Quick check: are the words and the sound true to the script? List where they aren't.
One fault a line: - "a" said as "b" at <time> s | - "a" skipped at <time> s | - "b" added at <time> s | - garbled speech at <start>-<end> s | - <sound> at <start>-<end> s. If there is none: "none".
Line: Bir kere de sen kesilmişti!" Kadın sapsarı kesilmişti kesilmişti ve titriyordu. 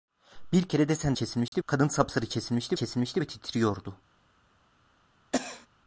- dropout at 1.5-1.5 s
- cough at 5.3-5.7 s